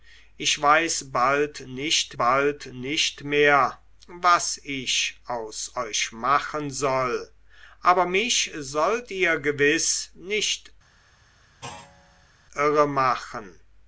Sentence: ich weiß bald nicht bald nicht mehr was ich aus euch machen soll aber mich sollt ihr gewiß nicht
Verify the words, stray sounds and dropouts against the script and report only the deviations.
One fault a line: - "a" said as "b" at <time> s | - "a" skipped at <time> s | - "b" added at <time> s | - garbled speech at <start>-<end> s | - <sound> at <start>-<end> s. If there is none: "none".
- thud at 11.6-12.3 s